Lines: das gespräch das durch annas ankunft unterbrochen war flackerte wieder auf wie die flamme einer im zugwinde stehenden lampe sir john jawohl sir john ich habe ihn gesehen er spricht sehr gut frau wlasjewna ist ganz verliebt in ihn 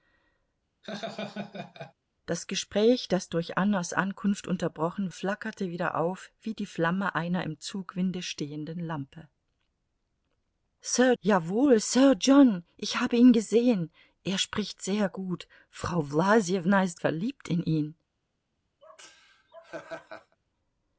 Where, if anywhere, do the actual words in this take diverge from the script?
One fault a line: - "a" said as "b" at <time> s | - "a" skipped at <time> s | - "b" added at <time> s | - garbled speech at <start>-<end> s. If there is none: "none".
- "war" skipped at 5.1 s
- "john" skipped at 11.1 s
- "ganz" skipped at 17.0 s